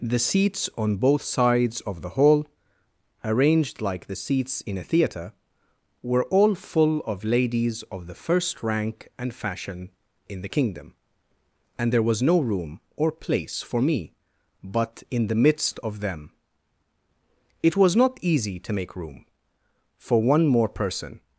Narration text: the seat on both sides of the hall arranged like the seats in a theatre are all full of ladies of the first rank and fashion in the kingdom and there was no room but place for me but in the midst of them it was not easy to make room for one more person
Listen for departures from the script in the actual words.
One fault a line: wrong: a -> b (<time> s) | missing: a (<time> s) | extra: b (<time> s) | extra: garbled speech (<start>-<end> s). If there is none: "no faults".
wrong: seat -> seats (0.2 s)
wrong: are -> were (6.0 s)
wrong: but -> or (13.0 s)